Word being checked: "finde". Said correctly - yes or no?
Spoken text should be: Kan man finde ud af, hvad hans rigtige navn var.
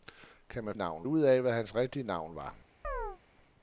no